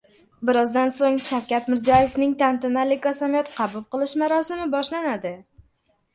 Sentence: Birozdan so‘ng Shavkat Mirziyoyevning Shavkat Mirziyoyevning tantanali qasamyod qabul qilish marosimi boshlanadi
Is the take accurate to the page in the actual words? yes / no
no